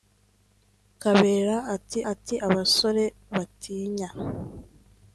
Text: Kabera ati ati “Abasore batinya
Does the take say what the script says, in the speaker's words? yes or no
yes